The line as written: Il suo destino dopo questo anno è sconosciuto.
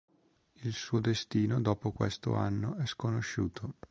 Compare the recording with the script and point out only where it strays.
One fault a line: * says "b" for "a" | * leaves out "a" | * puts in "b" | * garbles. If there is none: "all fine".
all fine